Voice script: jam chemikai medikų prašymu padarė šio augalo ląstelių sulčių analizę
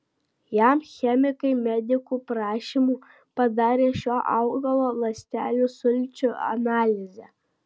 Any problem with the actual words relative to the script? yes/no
no